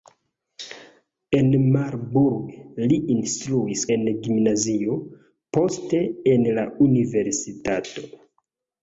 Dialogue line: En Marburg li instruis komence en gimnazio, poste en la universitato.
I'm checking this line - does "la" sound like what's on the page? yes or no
yes